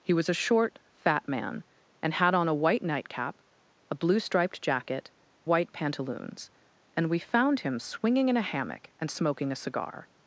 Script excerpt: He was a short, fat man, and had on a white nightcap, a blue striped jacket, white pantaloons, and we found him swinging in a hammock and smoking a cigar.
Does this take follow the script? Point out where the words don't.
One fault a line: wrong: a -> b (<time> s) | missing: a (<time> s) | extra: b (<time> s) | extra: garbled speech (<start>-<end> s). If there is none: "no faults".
no faults